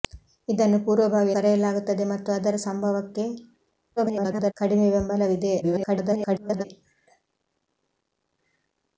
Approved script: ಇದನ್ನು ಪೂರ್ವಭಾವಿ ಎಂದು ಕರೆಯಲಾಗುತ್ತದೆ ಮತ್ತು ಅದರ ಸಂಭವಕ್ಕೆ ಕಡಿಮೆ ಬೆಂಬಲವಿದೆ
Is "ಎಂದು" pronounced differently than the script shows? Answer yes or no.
yes